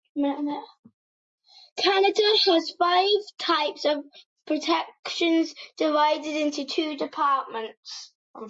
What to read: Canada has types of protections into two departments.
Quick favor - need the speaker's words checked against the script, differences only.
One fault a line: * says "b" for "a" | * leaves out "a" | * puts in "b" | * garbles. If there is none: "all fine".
* puts in "five"
* puts in "divided"